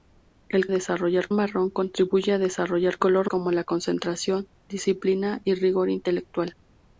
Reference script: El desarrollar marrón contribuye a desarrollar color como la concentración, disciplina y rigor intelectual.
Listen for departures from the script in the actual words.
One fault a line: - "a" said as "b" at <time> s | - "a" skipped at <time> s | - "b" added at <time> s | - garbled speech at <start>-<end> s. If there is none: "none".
none